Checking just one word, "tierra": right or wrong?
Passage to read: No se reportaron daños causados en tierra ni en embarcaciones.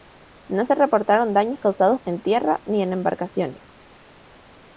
right